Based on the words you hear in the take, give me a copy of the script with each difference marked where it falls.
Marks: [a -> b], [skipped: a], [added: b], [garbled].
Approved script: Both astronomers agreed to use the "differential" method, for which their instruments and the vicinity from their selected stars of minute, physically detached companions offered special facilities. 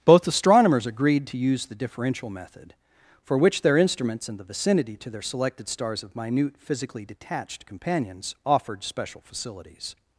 Both astronomers agreed to use the "differential" method, for which their instruments and the vicinity [from -> to] their selected stars of minute, physically detached companions offered special facilities.